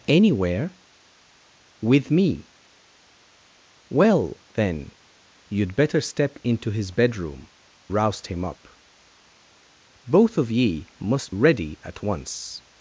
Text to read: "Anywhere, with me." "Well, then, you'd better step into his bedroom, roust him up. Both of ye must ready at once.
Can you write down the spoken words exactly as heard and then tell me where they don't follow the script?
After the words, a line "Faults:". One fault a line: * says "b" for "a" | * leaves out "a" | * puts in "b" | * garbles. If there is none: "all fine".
"Anywhere, with me." "Well, then, you'd better step into his bedroom, roust him up. Both of ye must ready at once.
Faults:
all fine